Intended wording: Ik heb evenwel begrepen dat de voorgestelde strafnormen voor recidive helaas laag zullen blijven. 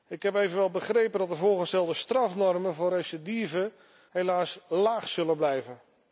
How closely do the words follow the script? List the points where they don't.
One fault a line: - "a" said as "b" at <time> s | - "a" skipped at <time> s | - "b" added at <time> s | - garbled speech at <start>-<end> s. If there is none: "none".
none